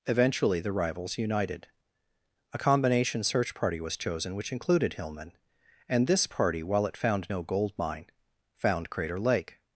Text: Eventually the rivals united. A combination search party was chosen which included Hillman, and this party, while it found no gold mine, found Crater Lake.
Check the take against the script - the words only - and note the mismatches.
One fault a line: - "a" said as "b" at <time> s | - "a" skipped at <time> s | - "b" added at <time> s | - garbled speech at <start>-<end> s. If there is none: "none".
none